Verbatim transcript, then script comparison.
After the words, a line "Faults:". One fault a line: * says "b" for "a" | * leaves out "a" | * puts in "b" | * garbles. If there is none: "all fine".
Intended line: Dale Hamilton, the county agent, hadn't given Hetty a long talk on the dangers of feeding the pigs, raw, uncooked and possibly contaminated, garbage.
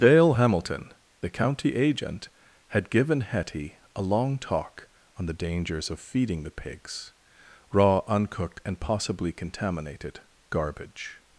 Dale Hamilton, the county agent, had given Hetty a long talk on the dangers of feeding the pigs, raw, uncooked and possibly contaminated, garbage.
Faults:
* says "had" for "hadn't"